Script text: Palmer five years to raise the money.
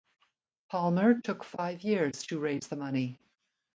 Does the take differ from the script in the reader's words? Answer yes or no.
yes